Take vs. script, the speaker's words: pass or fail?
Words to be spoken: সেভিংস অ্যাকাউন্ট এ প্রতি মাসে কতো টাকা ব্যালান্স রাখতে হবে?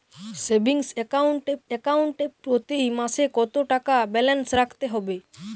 fail